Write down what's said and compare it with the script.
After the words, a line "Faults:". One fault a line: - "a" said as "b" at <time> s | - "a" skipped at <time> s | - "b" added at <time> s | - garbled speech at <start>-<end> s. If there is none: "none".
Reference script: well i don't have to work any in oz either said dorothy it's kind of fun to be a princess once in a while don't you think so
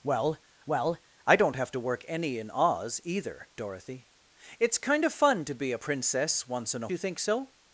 well well i don't have to work any in oz either dorothy it's kind of fun to be a princess once in a you think so
Faults:
- "well" added at 0.7 s
- "said" skipped at 3.5 s
- "while don't" skipped at 6.9 s